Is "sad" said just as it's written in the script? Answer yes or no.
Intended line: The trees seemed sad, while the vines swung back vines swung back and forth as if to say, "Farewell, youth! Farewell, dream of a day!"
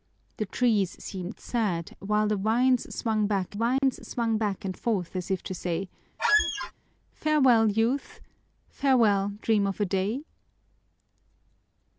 yes